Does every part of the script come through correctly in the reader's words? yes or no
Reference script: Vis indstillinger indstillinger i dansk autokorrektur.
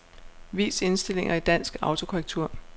no